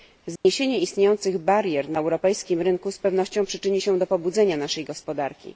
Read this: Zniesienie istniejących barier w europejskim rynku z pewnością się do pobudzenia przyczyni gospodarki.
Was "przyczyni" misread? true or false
true